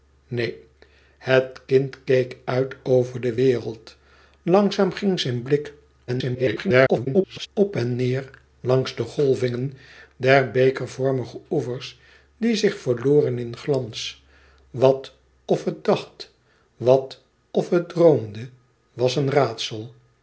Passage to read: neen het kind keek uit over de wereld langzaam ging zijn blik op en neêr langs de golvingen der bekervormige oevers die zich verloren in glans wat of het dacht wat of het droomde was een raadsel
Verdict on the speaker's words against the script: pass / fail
fail